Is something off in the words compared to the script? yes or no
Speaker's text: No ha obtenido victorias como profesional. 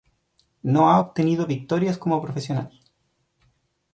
no